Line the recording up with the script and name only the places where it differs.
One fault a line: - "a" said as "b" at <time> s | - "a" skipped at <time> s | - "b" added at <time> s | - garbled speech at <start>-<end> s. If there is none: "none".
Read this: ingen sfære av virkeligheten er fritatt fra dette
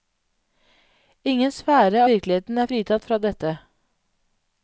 - "av" skipped at 2.0 s